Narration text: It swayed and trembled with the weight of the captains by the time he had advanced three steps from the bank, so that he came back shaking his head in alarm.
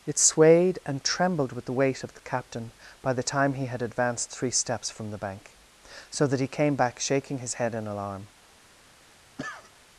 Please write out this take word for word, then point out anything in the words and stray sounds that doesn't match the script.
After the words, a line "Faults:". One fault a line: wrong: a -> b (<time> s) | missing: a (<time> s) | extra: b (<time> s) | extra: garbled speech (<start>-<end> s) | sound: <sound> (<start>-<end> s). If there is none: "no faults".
It swayed and trembled with the weight of the captain by the time he had advanced three steps from the bank, so that he came back shaking his head in alarm.
Faults:
wrong: captains -> captain (2.2 s)
sound: cough (9.4-9.7 s)